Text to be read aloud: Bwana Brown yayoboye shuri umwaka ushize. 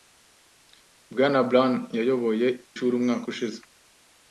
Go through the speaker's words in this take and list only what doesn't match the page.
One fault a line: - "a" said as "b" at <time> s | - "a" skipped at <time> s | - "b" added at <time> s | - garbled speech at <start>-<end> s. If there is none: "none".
none